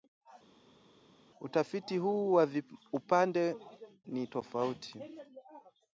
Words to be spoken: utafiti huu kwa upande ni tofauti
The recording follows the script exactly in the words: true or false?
true